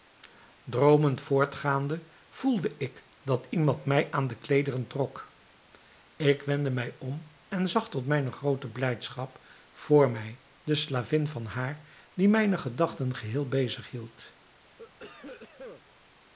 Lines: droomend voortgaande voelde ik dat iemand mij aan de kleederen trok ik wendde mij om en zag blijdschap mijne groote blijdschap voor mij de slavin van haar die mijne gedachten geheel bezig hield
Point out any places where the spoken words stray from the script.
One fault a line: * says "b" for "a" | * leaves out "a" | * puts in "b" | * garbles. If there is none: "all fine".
* says "tot" for "blijdschap"